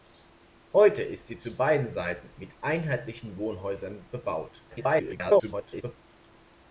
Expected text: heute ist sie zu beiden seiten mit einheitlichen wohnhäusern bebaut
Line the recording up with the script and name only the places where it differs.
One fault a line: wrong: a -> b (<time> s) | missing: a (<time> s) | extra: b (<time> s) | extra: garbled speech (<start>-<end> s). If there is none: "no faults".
extra: garbled speech (4.7-6.0 s)